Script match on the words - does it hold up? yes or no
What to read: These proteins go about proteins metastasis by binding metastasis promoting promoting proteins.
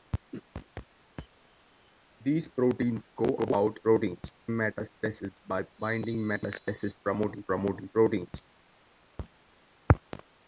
yes